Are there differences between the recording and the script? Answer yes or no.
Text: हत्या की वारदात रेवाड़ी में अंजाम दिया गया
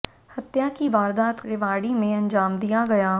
no